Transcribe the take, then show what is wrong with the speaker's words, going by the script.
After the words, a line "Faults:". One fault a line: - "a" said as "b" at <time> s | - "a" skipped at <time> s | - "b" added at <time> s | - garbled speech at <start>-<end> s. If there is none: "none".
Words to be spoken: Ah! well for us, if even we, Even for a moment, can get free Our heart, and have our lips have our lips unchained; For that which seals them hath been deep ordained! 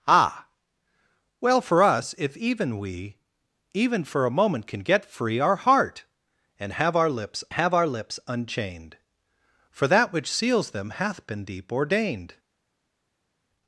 Ah! well for us, if even we, Even for a moment, can get free Our heart, and have our lips have our lips unchained; For that which seals them hath been deep ordained!
Faults:
none